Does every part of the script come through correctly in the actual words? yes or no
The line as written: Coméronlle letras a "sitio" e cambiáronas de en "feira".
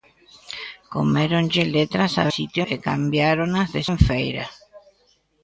yes